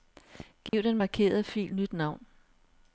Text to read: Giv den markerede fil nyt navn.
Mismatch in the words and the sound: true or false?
true